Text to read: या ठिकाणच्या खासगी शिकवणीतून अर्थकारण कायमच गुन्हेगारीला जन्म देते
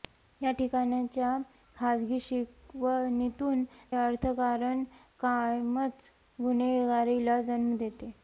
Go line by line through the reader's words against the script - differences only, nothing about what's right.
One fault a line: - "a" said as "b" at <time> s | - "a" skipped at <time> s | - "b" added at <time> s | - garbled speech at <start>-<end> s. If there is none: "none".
none